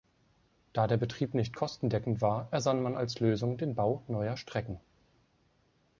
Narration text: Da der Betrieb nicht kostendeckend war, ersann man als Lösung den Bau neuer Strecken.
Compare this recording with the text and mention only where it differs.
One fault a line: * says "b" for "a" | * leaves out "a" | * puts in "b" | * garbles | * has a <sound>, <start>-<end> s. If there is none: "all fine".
all fine